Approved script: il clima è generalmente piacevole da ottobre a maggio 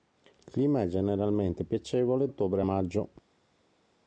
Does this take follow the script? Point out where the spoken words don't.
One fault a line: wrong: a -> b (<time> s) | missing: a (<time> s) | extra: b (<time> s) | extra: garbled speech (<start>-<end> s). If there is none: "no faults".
missing: da (2.3 s)